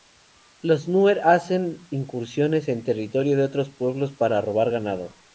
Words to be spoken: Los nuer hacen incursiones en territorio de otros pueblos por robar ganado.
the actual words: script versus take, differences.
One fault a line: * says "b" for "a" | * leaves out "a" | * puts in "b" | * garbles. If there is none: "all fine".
* says "para" for "por"